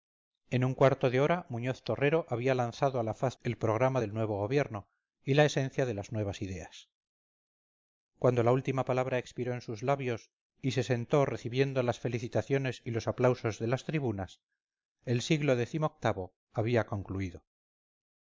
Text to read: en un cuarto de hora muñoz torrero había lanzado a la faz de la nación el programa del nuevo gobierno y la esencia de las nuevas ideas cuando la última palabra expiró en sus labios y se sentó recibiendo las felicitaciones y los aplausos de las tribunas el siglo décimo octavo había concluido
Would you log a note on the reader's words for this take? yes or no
yes